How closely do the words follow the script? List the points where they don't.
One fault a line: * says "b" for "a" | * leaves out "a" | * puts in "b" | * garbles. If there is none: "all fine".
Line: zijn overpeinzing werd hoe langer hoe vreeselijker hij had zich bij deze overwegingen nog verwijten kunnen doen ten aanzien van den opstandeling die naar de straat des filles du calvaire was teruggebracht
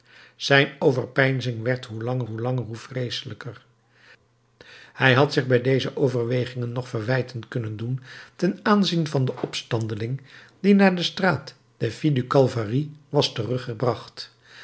* puts in "langer hoe"